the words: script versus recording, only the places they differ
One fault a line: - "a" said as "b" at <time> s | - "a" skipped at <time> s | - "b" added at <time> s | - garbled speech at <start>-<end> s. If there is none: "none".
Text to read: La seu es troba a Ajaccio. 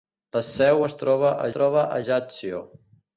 - "troba a" added at 1.5 s